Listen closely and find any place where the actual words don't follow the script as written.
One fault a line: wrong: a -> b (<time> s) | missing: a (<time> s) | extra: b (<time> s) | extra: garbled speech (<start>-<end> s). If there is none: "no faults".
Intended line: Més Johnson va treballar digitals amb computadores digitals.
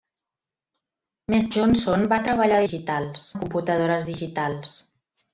no faults